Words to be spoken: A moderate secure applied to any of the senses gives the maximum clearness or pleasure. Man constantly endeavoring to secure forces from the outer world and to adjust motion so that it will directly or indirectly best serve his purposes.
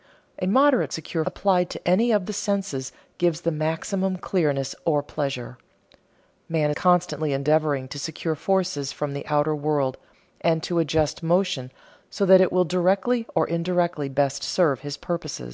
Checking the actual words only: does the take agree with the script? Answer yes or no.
yes